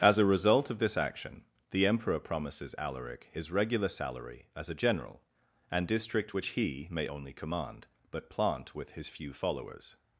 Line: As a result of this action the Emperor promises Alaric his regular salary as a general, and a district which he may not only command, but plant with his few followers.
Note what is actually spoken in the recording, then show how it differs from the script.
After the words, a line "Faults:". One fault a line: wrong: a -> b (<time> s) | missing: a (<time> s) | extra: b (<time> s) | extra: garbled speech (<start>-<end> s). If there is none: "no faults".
As a result of this action the Emperor promises Alaric his regular salary as a general, and district which he may only command, but plant with his few followers.
Faults:
missing: a (5.9 s)
missing: not (7.1 s)